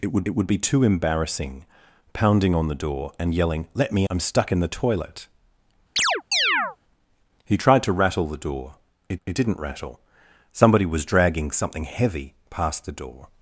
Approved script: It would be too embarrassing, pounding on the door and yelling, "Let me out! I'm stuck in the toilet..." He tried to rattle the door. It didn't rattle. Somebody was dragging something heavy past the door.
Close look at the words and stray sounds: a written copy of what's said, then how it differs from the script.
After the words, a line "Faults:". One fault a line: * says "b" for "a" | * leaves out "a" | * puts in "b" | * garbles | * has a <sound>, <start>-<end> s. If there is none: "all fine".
It would it would be too embarrassing, pounding on the door and yelling, "Let me! I'm stuck in the toilet..." He tried to rattle the door. It it didn't rattle. Somebody was dragging something heavy past the door.
Faults:
* puts in "it would"
* leaves out "out"
* has a chirp, 6.0-6.8 s
* puts in "it"